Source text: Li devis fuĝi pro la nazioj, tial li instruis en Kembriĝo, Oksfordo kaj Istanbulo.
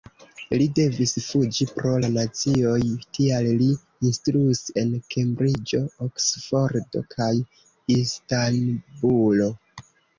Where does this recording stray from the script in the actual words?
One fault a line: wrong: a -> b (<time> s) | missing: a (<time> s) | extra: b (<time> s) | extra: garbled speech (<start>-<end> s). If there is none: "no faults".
no faults